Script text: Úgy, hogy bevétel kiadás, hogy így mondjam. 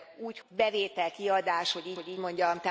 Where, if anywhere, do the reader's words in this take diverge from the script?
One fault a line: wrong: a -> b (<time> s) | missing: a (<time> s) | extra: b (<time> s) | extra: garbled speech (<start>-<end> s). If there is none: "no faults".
missing: hogy (0.4 s)
extra: hogy így (1.9 s)